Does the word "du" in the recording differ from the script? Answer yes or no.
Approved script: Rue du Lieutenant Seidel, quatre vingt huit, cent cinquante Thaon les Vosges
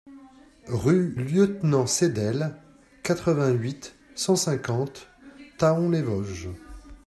yes